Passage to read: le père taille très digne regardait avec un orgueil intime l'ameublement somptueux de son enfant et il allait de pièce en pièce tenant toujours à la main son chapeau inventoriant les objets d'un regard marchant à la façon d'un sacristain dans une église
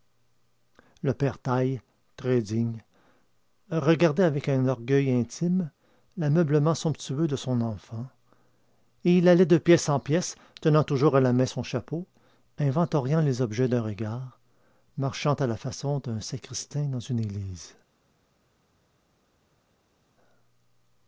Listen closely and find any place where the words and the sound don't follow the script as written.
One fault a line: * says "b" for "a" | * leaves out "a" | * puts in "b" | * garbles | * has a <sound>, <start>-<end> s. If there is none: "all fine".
all fine